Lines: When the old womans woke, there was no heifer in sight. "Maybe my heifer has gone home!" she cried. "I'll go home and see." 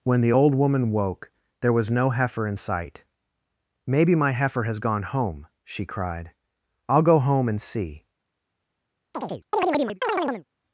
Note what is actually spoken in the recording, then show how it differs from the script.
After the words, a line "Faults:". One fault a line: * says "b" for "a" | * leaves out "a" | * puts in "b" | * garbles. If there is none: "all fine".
When the old woman woke, there was no heifer in sight. "Maybe my heifer has gone home!" she cried. "I'll go home and see."
Faults:
* says "woman" for "womans"